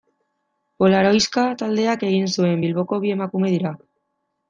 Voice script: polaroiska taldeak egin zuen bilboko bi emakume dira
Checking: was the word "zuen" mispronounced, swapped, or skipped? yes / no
no